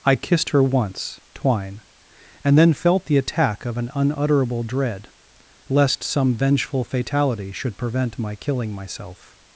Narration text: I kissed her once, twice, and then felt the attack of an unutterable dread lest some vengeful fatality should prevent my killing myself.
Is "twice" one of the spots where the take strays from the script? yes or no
yes